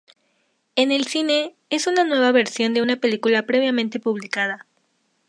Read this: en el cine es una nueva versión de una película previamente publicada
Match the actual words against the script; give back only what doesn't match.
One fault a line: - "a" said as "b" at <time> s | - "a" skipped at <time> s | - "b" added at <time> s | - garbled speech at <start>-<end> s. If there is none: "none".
none